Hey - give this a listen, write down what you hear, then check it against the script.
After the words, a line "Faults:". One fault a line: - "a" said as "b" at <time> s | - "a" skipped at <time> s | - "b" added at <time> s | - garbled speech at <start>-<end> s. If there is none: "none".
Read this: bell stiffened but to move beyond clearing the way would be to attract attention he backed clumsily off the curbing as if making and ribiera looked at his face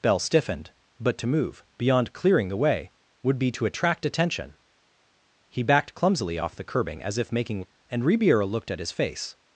bell stiffened but to move beyond clearing the way would be to attract attention he backed clumsily off the curbing as if making and ribiera looked at his face
Faults:
none